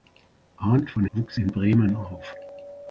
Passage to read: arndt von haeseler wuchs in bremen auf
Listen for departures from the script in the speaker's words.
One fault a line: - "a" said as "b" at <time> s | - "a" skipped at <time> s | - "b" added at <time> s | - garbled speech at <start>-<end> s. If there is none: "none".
- "haeseler" skipped at 1.1 s